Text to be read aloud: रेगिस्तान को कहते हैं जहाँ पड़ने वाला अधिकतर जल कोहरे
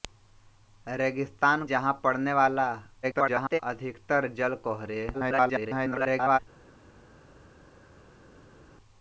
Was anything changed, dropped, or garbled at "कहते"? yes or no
yes